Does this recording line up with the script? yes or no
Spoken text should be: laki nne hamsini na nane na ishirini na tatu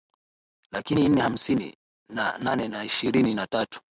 yes